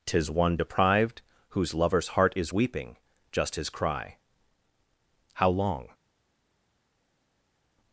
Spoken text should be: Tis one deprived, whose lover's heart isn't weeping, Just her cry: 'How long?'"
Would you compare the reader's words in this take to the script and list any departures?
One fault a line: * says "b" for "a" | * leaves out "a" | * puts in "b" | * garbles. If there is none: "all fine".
* says "is" for "isn't"
* says "his" for "her"